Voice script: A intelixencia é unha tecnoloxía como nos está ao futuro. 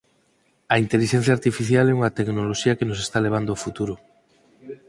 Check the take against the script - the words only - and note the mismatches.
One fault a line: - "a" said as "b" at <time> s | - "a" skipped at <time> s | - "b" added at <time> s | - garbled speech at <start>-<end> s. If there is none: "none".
- "artificial" added at 1.4 s
- "como" said as "que" at 2.8 s
- "levando" added at 3.2 s